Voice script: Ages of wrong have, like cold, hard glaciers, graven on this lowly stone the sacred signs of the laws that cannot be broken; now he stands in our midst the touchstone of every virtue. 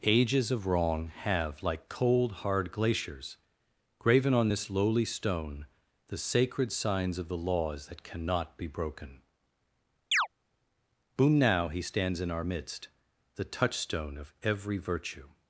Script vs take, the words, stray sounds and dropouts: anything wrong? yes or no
yes